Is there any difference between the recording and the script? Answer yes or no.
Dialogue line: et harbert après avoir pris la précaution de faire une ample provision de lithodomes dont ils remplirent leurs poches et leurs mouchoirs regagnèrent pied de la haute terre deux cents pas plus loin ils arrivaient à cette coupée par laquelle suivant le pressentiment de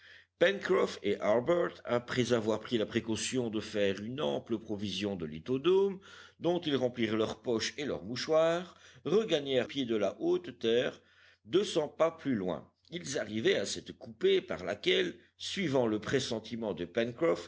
no